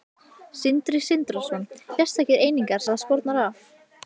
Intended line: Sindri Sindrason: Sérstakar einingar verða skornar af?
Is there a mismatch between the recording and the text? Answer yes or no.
no